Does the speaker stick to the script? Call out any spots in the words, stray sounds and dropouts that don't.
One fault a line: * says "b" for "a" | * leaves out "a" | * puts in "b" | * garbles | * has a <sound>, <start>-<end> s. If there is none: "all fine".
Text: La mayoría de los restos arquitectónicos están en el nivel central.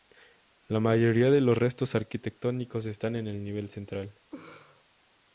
* has a laugh, 4.3-4.8 s